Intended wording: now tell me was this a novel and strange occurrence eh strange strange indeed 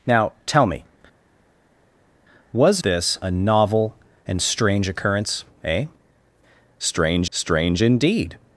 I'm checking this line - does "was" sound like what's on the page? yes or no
yes